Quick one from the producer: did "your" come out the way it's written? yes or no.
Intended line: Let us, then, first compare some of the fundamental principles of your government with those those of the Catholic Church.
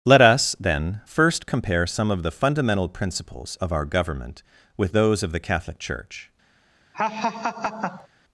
no